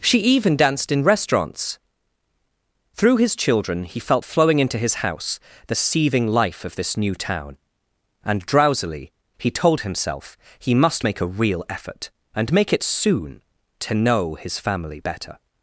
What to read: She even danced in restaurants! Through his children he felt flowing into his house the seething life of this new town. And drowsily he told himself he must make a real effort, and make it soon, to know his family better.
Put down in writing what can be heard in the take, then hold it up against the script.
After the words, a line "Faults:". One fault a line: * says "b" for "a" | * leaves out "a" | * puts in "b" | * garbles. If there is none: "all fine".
She even danced in restaurants! Through his children he felt flowing into his house the seething life of this new town. And drowsily he told himself he must make a real effort, and make it soon, to know his family better.
Faults:
all fine